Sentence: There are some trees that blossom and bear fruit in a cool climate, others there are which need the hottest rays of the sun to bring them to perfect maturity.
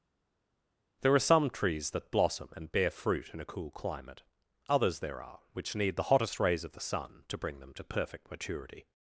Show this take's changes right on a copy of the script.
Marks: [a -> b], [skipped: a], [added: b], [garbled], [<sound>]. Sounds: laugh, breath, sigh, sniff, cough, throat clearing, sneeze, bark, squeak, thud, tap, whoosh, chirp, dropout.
There are some trees that blossom and bear fruit in a cool climate, others there are which need the hottest rays of the sun to bring them to perfect maturity.